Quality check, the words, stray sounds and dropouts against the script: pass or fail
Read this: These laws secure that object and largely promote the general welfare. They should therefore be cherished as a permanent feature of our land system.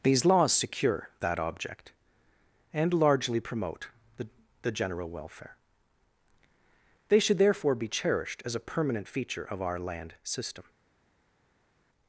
fail